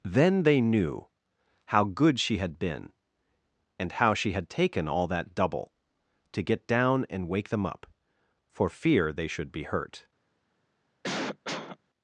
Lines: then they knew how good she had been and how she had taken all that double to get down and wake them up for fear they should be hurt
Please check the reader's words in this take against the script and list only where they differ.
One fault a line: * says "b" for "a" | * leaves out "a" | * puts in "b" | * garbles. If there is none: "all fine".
all fine